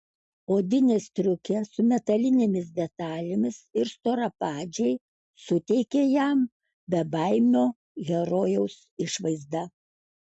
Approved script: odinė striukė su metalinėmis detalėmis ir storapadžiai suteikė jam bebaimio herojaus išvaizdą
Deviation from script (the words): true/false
false